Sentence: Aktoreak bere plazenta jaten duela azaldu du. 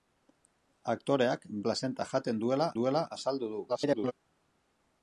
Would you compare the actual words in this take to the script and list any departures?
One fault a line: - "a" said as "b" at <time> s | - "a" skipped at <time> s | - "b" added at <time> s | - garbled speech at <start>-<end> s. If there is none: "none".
- "bere" skipped at 1.4 s
- "duela" added at 2.8 s
- garbled speech at 3.7-4.1 s